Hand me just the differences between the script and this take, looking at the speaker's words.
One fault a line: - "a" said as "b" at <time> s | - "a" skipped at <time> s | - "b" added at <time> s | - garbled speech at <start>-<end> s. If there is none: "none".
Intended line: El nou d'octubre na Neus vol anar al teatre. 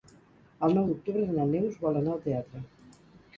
none